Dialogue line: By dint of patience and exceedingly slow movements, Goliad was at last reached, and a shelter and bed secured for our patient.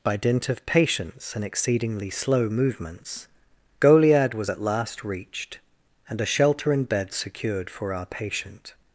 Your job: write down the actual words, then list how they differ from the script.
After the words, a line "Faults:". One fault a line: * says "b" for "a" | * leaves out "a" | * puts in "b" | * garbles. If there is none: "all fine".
By dint of patience and exceedingly slow movements, Goliad was at last reached, and a shelter and bed secured for our patient.
Faults:
all fine